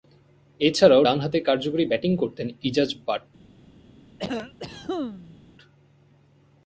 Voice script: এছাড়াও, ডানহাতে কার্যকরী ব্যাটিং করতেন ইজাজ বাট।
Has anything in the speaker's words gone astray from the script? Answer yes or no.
no